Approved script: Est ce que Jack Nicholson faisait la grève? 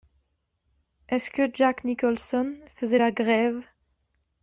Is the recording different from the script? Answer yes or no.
no